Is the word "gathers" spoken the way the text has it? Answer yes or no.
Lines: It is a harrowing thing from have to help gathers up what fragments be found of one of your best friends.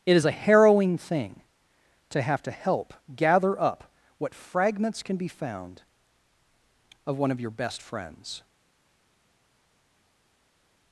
no